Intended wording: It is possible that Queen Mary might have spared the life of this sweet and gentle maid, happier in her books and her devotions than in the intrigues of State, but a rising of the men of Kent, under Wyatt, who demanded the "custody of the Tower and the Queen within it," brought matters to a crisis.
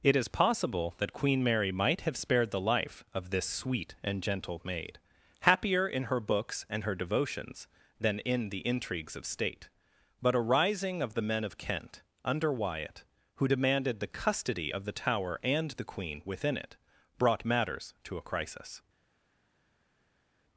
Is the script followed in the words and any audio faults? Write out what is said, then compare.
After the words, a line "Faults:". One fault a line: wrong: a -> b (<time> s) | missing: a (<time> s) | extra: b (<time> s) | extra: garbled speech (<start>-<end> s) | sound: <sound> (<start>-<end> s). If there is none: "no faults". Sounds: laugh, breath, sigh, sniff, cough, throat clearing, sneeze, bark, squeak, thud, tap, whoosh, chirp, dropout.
It is possible that Queen Mary might have spared the life of this sweet and gentle maid, happier in her books and her devotions than in the intrigues of State, but a rising of the men of Kent, under Wyatt, who demanded the "custody of the Tower and the Queen within it," brought matters to a crisis.
Faults:
no faults